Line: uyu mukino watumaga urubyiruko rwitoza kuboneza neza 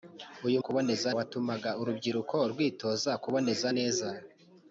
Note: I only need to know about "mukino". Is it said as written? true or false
false